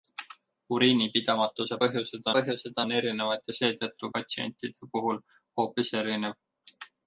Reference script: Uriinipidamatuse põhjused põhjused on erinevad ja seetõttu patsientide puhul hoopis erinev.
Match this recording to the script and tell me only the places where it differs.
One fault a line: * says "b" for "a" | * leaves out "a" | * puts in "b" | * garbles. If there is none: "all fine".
all fine